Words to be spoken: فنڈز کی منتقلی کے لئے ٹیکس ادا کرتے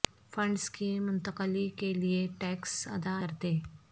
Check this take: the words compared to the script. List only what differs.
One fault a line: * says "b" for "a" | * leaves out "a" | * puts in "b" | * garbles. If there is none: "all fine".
all fine